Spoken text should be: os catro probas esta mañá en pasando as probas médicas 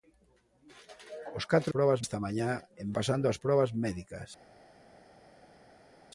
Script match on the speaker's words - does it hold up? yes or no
yes